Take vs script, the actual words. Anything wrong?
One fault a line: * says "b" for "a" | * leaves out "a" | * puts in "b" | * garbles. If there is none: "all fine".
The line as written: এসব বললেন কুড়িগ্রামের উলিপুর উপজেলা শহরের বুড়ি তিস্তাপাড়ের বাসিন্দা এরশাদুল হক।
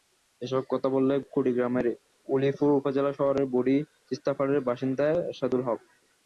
* puts in "কথা"